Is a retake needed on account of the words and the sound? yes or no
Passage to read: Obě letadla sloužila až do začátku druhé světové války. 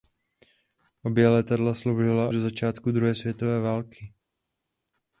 yes